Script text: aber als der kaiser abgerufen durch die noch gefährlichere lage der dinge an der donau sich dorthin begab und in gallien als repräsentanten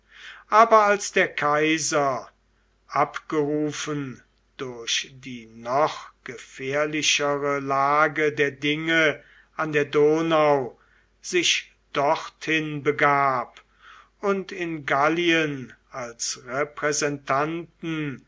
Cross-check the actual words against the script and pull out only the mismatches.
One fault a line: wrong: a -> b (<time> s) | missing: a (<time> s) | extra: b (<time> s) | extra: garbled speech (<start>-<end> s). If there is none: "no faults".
no faults